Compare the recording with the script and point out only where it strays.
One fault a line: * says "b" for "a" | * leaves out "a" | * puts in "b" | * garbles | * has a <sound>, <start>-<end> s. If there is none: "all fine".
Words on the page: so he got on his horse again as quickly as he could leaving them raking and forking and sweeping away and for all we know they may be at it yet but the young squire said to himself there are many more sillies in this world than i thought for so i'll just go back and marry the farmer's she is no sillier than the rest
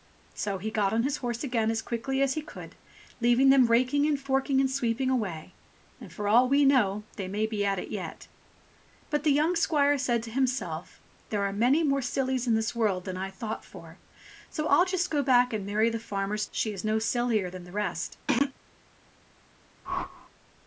* has a throat clearing, 18.3-18.5 s
* has a whoosh, 19.8-20.3 s